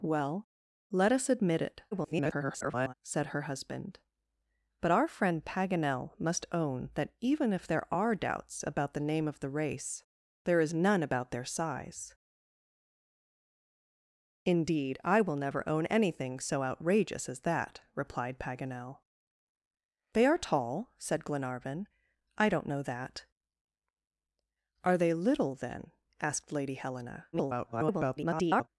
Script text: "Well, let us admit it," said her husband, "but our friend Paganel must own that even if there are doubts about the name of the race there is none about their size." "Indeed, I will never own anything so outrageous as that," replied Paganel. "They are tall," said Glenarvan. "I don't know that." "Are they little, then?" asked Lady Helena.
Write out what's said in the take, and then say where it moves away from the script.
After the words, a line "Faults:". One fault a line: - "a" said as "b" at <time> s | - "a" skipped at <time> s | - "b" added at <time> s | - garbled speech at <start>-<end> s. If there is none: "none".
"Well, let us admit it," [garbled] said her husband, "but our friend Paganel must own that even if there are doubts about the name of the race there is none about their size." "Indeed, I will never own anything so outrageous as that," replied Paganel. "They are tall," said Glenarvan. "I don't know that." "Are they little, then?" asked Lady Helena. [garbled]
Faults:
- garbled speech at 1.9-2.9 s
- garbled speech at 27.3-28.7 s